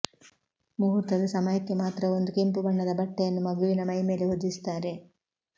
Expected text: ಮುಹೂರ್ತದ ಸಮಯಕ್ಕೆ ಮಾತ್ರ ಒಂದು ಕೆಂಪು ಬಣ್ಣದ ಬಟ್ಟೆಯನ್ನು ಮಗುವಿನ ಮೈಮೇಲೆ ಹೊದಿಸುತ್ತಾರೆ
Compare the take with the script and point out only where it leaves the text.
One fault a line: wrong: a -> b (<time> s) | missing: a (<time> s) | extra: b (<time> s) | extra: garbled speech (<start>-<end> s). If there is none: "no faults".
no faults